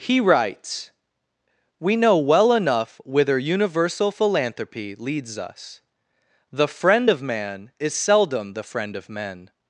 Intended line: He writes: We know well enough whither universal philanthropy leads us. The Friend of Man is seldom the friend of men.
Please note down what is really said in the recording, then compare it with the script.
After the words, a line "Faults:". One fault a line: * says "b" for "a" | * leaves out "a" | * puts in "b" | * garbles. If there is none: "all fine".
He writes: We know well enough whither universal philanthropy leads us. The Friend of Man is seldom the friend of men.
Faults:
all fine